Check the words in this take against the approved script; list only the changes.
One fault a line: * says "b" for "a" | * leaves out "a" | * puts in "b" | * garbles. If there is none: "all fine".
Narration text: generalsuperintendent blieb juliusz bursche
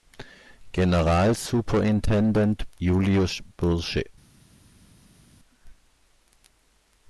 * leaves out "blieb"